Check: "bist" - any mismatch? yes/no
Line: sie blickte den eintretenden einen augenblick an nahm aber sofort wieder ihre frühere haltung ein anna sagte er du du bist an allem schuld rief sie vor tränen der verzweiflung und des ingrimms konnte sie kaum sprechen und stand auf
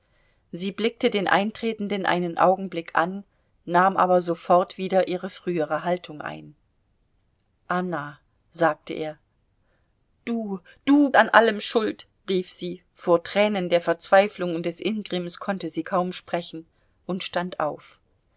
yes